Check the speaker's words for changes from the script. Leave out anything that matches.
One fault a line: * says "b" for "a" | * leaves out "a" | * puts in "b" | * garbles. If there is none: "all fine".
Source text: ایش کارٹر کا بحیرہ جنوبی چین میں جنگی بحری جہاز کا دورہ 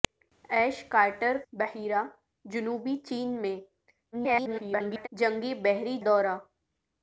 * leaves out "کا"
* garbles
* leaves out "جہاز کا"